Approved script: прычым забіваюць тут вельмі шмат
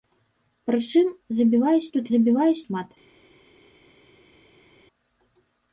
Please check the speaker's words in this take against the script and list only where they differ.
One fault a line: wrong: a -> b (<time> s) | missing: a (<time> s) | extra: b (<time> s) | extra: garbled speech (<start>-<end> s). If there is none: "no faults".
wrong: вельмі -> забіваюць (2.1 s)